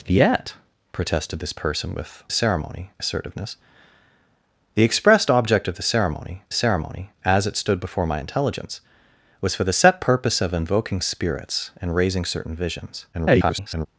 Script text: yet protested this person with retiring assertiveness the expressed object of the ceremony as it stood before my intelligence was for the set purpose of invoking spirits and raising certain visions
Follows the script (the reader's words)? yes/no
no